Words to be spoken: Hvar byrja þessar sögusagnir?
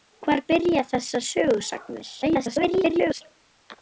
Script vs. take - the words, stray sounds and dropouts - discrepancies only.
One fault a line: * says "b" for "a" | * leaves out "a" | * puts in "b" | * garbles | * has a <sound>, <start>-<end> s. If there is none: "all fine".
* garbles